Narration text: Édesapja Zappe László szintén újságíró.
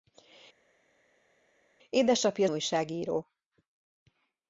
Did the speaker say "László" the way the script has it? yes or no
no